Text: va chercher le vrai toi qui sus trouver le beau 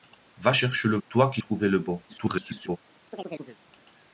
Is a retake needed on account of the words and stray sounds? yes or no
yes